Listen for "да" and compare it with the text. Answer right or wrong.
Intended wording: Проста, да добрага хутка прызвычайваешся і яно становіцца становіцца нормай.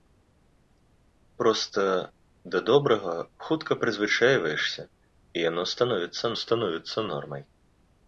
right